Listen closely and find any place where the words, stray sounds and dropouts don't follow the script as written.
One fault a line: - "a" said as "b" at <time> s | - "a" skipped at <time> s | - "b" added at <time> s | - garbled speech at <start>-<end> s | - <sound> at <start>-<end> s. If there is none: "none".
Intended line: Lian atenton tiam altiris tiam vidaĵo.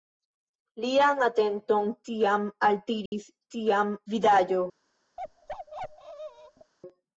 - dropout at 3.1-3.1 s
- bark at 5.2-6.7 s